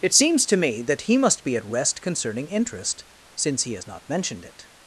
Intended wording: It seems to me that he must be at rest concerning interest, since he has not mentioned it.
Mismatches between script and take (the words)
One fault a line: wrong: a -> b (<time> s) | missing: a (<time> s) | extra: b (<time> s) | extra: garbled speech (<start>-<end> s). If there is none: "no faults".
no faults